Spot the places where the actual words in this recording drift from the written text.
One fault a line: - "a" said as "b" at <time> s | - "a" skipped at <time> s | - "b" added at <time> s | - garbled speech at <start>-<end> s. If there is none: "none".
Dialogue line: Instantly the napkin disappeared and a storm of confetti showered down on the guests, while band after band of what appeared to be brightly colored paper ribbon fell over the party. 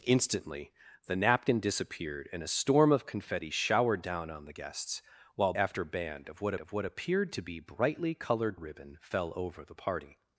- "band" skipped at 5.5 s
- "of what" added at 6.6 s
- "paper" skipped at 8.6 s